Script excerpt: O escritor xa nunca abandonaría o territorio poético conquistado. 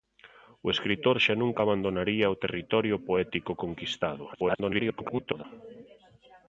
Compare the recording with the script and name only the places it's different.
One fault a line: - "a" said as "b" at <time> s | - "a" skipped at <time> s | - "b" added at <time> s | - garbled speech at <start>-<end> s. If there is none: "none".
- garbled speech at 4.3-5.4 s